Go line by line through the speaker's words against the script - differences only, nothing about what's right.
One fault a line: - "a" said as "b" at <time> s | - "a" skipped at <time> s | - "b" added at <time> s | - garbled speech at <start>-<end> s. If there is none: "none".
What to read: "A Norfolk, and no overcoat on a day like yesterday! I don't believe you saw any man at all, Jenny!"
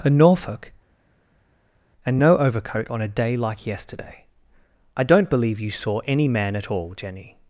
none